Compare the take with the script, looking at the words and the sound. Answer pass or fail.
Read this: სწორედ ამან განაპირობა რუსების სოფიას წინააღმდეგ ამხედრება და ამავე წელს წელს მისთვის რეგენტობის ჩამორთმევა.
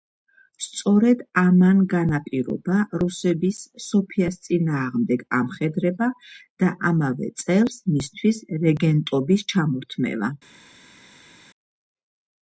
fail